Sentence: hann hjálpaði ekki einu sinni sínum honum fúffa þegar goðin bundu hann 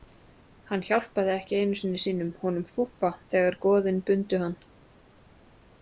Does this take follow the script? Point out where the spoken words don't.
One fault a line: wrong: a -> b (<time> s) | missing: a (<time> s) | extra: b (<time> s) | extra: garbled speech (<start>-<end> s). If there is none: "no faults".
no faults